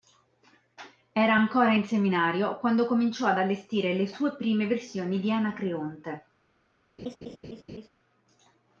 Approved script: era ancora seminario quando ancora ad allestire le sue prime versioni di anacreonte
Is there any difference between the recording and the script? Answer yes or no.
yes